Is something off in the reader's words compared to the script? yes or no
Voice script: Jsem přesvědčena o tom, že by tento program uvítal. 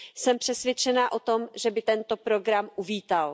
no